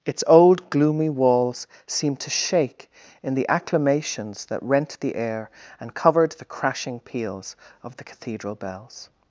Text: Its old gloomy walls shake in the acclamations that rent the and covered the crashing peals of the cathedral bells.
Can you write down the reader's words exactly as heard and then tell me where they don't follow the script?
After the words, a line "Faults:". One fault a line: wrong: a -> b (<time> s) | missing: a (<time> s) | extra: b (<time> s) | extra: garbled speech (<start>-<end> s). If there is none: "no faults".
Its old gloomy walls seemed to shake in the acclamations that rent the air and covered the crashing peals of the cathedral bells.
Faults:
extra: seemed to (1.9 s)
extra: air (5.2 s)